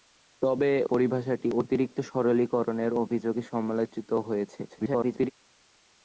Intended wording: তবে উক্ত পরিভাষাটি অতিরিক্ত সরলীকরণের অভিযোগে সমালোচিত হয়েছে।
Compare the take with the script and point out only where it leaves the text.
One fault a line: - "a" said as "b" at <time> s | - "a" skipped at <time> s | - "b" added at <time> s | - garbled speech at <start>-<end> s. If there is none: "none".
- "উক্ত" skipped at 0.7 s
- garbled speech at 4.7-5.3 s